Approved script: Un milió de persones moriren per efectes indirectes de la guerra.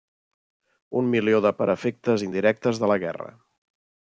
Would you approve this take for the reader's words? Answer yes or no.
no